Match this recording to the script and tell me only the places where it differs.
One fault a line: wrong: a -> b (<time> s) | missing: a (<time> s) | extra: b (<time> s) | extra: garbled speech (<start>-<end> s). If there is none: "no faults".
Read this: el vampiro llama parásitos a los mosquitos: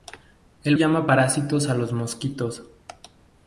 missing: vampiro (0.8 s)